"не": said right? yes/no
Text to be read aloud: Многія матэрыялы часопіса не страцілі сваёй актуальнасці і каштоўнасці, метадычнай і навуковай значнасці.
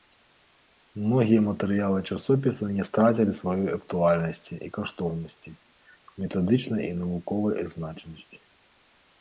yes